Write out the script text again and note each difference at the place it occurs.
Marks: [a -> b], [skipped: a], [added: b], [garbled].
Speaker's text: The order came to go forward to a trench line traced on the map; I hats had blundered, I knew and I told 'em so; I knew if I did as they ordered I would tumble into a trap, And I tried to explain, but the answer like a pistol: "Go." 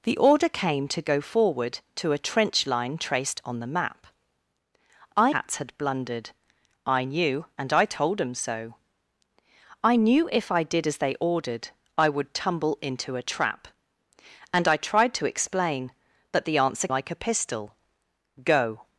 The order came to go forward to a trench line traced on the map; I hats had blundered, I knew and I told 'em so; I knew if I did as they ordered I would tumble into a trap, And I tried to explain, but the answer like a pistol: "Go."